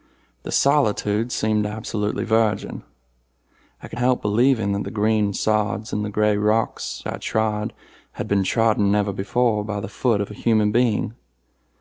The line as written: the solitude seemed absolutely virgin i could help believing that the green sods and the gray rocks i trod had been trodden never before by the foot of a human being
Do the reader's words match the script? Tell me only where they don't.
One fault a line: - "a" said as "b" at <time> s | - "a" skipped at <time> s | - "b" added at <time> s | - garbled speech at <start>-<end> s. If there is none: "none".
none